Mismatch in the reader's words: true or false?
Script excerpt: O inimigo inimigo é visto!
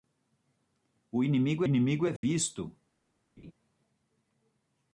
false